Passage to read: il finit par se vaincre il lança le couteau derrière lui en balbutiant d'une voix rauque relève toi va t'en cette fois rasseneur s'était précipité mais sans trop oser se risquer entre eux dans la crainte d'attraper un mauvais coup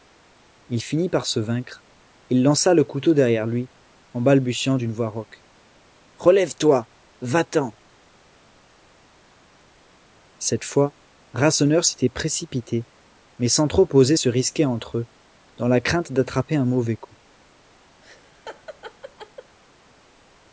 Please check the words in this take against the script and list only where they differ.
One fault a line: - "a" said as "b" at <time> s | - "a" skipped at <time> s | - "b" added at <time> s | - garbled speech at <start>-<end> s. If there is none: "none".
none